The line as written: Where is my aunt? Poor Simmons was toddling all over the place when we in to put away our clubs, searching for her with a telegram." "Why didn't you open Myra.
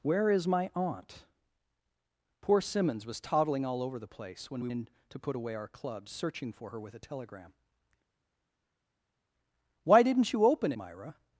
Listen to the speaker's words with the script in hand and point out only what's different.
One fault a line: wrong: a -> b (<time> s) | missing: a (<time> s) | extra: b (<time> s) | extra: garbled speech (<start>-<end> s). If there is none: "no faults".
no faults